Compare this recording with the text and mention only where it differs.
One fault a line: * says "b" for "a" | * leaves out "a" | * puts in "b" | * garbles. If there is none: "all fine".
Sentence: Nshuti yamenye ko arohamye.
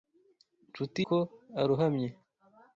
* leaves out "yamenye"